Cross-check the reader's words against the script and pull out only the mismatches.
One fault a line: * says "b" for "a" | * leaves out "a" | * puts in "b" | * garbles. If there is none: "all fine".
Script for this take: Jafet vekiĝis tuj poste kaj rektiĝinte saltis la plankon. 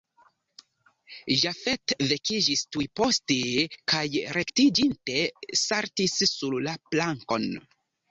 * puts in "sur"